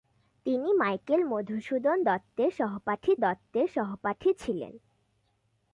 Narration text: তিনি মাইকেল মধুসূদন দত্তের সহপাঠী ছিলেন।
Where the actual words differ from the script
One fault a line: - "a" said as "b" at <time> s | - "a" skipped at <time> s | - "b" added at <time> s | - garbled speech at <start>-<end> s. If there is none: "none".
- "দত্তের সহপাঠী" added at 3.2 s